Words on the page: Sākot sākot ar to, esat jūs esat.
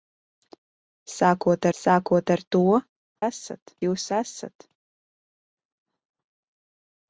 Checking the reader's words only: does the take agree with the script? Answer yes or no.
yes